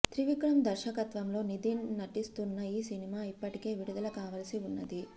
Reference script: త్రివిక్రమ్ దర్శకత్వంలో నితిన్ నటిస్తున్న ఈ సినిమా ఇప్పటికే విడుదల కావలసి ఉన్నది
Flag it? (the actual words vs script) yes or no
no